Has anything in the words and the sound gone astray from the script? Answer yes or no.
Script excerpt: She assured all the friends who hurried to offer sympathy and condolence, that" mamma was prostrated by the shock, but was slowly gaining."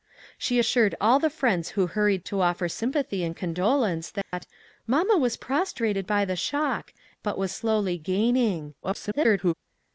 yes